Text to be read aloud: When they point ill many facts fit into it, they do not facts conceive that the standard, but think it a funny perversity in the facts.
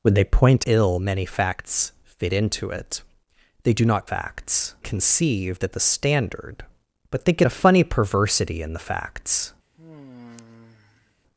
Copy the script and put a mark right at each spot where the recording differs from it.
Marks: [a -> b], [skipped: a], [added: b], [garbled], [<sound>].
When they point ill many facts fit into it, they do not facts conceive that the standard, but think it a funny perversity in the facts. [sigh]